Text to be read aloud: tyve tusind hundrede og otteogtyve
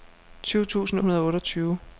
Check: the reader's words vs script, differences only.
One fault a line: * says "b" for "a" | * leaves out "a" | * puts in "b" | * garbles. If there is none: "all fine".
all fine